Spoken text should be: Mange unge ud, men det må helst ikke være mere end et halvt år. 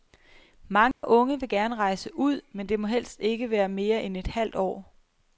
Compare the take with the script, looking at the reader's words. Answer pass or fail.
fail